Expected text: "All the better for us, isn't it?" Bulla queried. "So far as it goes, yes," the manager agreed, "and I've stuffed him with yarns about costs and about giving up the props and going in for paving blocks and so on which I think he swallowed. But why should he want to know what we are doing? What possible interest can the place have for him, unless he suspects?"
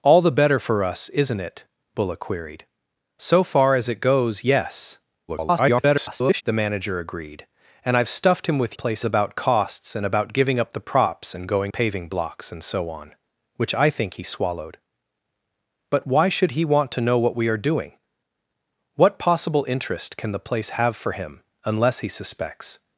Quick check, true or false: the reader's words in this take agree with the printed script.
false